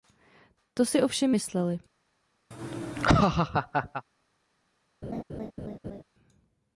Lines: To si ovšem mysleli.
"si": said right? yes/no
yes